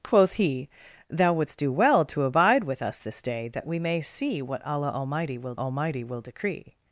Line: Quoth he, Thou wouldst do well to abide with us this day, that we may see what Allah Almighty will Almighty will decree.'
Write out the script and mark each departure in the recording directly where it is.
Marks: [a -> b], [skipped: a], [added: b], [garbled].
Quoth he, Thou wouldst do well to abide with us this day, that we may see what Allah Almighty will Almighty will decree.'